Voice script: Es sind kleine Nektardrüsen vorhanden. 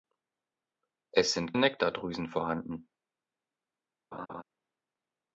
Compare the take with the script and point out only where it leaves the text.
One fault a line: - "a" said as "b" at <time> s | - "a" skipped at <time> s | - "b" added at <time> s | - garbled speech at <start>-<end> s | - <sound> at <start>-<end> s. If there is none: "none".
- "kleine" skipped at 1.5 s
- laugh at 4.1-4.4 s